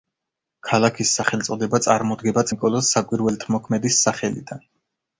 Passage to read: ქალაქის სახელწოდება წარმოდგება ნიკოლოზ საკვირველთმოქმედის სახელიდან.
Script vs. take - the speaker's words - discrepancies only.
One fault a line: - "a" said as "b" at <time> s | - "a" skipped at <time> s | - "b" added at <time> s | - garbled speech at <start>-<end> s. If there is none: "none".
none